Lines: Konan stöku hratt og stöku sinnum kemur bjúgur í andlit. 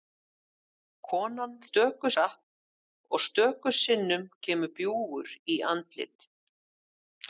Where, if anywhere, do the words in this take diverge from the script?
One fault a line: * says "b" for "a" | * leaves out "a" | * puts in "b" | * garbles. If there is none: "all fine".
all fine